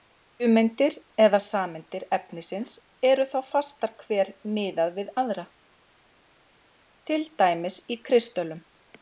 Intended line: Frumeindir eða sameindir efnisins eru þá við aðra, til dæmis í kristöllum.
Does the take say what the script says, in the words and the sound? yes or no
no